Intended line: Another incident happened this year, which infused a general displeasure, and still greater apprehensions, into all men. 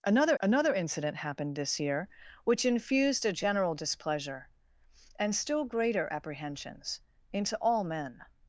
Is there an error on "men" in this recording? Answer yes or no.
no